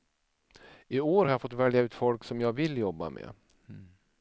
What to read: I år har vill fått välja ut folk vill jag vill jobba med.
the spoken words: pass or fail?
fail